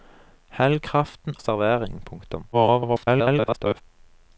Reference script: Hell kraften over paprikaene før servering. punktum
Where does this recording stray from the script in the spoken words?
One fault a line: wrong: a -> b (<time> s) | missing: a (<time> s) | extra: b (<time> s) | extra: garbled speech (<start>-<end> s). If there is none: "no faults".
missing: over paprikaene før (1.4 s)
extra: garbled speech (2.5-3.8 s)